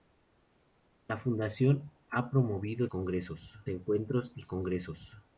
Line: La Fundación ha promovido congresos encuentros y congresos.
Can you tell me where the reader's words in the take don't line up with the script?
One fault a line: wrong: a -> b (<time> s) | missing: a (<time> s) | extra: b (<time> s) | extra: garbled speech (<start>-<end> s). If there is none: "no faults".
no faults